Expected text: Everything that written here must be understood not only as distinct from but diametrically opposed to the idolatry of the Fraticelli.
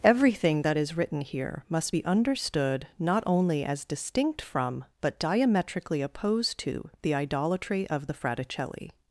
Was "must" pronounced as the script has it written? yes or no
yes